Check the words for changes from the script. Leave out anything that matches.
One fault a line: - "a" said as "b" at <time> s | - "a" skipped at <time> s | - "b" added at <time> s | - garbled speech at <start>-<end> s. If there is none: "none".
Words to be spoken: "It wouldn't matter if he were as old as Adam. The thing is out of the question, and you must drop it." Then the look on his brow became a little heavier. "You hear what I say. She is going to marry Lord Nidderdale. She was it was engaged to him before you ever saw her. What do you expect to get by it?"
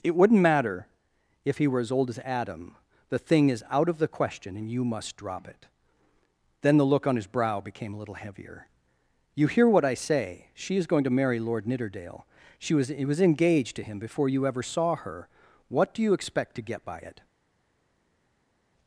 none